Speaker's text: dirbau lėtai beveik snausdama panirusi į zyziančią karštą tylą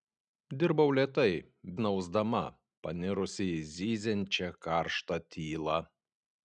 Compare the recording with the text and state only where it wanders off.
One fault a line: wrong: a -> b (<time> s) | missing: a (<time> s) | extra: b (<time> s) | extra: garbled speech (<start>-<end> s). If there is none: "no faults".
missing: beveik (1.3 s)